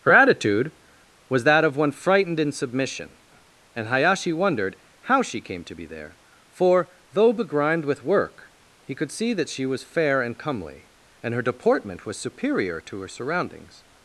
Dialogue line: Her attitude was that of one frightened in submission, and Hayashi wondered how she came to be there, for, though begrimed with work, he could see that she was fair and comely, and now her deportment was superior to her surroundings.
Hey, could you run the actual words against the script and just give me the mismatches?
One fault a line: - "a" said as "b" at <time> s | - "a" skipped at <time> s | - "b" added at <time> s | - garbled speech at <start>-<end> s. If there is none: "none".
- "now" skipped at 11.3 s